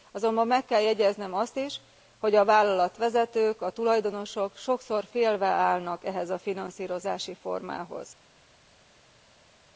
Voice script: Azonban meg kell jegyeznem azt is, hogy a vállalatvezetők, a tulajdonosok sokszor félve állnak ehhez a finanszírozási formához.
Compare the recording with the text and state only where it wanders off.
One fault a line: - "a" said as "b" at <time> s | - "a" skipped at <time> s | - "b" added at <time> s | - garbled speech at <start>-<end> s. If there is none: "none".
none